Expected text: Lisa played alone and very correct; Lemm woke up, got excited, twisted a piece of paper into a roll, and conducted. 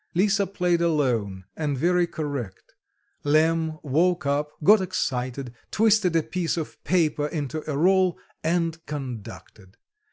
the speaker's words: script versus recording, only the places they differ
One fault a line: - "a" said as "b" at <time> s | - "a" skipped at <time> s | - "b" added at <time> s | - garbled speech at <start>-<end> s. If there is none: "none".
none